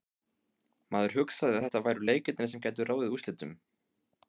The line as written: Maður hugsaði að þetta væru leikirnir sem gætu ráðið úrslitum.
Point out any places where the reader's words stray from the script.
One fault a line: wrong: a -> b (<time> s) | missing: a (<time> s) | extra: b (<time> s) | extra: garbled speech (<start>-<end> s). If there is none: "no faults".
no faults